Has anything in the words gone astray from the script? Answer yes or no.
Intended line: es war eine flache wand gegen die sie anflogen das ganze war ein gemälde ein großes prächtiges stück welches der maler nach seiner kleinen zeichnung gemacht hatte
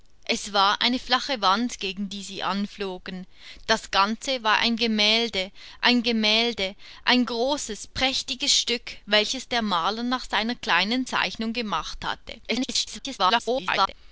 yes